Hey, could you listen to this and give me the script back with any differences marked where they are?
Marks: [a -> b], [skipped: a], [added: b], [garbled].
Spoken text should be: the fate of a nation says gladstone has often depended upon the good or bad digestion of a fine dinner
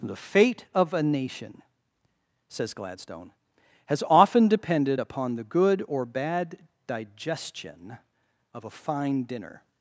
the fate of a nation says gladstone has often depended upon the good or bad digestion of a fine dinner